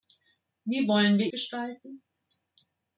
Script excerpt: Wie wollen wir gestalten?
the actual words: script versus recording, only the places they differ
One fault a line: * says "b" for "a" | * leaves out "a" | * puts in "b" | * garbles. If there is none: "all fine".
all fine